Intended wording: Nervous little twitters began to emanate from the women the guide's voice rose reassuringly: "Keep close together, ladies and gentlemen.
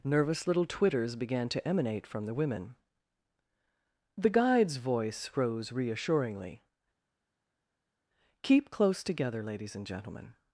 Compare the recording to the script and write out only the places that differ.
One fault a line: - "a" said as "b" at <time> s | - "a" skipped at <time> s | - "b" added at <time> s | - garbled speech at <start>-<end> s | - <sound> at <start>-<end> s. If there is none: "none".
none